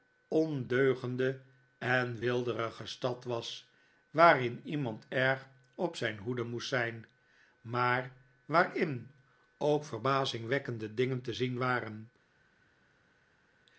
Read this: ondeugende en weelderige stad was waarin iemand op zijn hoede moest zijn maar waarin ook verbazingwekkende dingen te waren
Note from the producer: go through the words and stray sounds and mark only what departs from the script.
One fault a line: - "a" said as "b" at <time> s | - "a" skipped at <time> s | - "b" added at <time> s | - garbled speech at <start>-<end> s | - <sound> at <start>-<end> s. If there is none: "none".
- "erg" added at 5.1 s
- "zien" added at 11.3 s